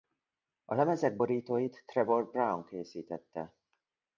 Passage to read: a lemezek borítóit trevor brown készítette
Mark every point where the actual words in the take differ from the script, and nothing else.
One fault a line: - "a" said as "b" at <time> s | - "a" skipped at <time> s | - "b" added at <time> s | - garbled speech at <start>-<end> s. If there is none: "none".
none